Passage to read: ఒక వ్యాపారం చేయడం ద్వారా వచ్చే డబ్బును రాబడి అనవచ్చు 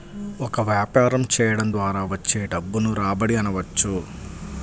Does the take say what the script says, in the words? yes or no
yes